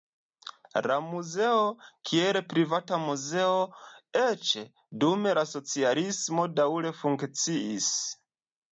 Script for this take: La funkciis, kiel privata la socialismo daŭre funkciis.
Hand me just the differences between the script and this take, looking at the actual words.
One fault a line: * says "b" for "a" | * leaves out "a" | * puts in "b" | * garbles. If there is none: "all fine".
* says "muzeo" for "funkciis"
* puts in "muzeo eĉ dum"